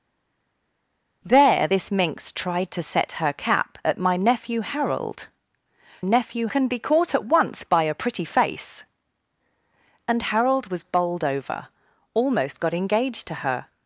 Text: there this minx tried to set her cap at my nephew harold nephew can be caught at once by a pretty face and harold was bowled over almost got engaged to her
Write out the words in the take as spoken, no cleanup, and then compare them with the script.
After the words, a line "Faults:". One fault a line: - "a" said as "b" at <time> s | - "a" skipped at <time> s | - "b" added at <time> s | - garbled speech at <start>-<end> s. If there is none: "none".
there this minx tried to set her cap at my nephew harold nephew can be caught at once by a pretty face and harold was bowled over almost got engaged to her
Faults:
none